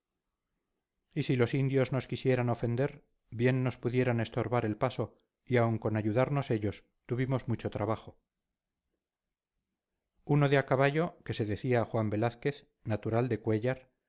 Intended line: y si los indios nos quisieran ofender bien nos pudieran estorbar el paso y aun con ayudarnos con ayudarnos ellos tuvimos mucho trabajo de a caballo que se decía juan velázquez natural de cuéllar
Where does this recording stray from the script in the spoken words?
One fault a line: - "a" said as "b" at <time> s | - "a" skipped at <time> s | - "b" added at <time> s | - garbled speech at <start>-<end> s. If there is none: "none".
- "con ayudarnos" skipped at 6.5 s
- "uno" added at 10.2 s